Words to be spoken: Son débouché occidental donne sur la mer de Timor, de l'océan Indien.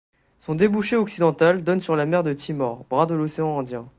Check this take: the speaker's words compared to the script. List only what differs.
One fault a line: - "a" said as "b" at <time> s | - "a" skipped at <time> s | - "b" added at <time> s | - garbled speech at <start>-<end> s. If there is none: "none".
- "bras" added at 2.9 s